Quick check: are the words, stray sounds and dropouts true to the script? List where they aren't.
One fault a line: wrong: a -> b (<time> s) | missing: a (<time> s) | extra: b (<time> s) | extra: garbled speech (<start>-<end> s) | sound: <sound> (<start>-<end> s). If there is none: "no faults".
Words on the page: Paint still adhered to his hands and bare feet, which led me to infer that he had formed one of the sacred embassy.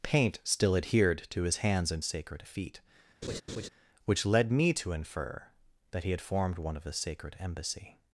wrong: bare -> sacred (2.0 s)
sound: laugh (3.2-3.7 s)